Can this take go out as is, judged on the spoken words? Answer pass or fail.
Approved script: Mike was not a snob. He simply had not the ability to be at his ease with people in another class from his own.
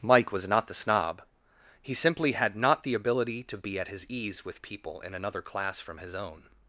fail